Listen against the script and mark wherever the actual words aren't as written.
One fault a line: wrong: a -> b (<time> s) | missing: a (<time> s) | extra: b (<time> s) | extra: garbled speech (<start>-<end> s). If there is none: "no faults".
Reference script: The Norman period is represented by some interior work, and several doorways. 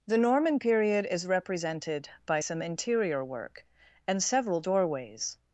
no faults